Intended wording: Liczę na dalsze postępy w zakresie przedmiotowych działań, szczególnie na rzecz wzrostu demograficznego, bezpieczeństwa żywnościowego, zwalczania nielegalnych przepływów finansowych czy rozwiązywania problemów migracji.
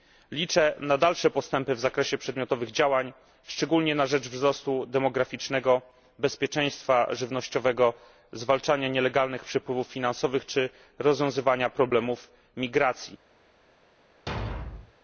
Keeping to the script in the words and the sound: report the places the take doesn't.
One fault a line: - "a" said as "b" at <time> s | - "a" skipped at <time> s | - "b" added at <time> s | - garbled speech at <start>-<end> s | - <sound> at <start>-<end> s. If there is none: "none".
- thud at 14.3-14.9 s